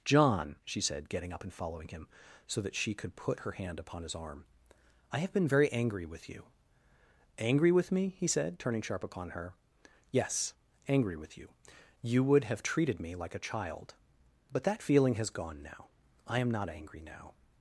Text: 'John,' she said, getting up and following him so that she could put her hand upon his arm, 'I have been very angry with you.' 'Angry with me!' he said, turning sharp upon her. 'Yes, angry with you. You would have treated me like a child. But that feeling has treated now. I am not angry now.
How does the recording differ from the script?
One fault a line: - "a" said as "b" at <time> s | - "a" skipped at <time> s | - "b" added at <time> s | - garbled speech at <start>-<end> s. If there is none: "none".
- "treated" said as "gone" at 15.3 s